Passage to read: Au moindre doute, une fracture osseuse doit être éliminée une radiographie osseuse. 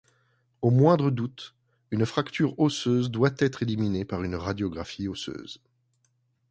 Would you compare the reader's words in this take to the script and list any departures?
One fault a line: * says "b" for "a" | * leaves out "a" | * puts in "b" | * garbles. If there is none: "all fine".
* puts in "par"